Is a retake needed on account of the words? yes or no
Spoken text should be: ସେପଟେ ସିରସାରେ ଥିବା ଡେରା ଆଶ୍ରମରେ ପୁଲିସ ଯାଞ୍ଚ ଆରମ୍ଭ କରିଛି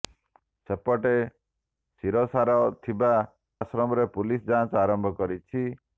yes